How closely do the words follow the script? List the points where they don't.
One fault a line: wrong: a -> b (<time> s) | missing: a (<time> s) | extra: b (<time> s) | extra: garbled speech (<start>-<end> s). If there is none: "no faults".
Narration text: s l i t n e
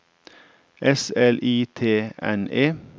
no faults